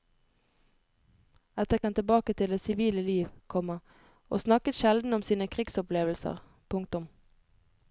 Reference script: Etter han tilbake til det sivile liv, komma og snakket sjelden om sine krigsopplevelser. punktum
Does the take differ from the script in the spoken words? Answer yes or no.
no